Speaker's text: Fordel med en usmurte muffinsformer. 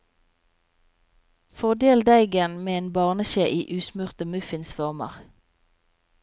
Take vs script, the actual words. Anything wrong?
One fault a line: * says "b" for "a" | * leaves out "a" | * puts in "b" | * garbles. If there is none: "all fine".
* puts in "deigen"
* puts in "barneskje i"